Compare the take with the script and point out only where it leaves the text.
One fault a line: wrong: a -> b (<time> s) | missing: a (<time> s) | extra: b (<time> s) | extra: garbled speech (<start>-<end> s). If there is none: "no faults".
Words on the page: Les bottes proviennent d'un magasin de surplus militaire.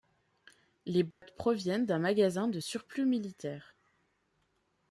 no faults